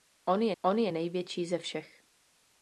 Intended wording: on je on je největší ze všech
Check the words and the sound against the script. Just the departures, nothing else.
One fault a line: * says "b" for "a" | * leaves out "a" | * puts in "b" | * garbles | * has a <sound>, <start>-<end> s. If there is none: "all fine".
all fine